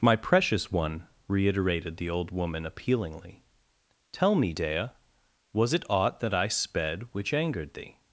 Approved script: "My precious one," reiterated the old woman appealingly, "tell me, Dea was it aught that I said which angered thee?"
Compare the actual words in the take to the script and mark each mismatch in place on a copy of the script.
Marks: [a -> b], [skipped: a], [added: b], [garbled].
"My precious one," reiterated the old woman appealingly, "tell me, Dea was it aught that I [said -> sped] which angered thee?"